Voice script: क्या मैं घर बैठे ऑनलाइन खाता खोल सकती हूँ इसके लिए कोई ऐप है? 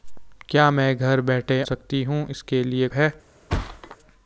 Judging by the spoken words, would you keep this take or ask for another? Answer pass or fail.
fail